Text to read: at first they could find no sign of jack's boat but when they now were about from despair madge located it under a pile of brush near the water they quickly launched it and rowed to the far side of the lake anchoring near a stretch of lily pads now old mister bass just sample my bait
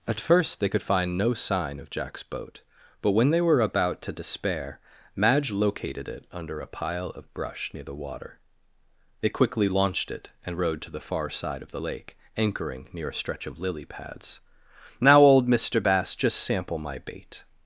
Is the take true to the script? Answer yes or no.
no